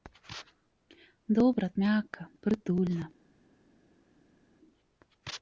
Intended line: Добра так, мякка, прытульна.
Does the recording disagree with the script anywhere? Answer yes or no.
yes